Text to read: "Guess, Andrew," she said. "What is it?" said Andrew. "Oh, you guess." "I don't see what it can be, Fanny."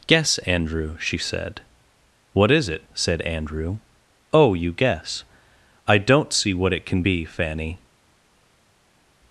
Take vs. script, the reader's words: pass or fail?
pass